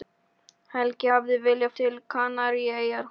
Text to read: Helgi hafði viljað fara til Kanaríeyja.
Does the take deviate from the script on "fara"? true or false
true